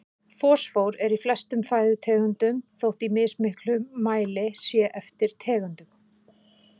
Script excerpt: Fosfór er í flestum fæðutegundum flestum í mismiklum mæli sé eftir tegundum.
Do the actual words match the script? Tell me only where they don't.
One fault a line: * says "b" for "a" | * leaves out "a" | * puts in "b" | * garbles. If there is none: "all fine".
* says "þótt" for "flestum"